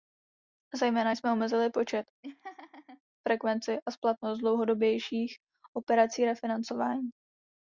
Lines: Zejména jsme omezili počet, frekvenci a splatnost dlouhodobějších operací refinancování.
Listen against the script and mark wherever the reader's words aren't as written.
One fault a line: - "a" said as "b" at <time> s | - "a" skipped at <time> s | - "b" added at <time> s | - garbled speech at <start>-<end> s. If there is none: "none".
none